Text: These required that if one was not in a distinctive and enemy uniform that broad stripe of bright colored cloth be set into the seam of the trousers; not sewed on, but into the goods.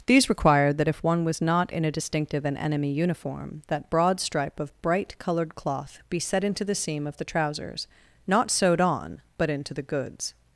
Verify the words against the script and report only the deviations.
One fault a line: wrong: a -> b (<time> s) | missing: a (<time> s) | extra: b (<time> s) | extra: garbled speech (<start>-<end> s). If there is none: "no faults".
no faults